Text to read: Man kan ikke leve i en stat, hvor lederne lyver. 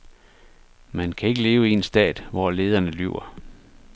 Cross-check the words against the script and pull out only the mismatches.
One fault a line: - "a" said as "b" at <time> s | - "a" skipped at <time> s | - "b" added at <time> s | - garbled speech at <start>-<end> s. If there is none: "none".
none